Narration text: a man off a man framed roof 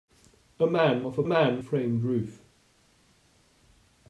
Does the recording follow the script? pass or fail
pass